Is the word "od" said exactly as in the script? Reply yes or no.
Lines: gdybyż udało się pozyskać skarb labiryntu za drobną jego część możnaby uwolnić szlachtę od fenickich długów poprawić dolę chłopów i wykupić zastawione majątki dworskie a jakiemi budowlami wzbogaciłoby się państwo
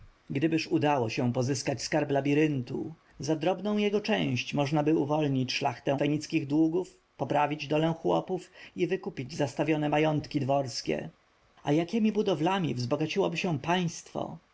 no